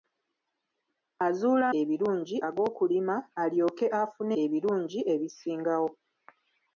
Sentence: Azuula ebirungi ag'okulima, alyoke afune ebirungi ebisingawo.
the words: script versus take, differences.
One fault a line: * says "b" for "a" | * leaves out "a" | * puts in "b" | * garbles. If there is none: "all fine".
all fine